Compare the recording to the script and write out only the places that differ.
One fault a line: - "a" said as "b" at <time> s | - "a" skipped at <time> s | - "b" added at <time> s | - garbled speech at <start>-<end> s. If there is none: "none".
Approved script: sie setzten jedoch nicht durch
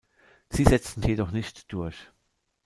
none